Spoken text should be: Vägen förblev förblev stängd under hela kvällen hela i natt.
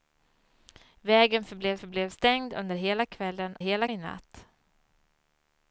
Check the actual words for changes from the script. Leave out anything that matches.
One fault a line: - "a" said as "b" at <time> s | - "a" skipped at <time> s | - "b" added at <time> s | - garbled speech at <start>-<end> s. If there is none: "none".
none